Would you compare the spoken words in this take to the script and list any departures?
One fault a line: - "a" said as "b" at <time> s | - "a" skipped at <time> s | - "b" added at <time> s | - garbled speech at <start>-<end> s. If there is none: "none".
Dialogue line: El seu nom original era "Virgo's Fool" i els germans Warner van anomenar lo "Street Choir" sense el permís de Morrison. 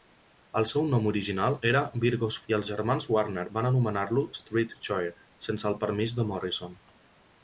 - "Fool" skipped at 2.4 s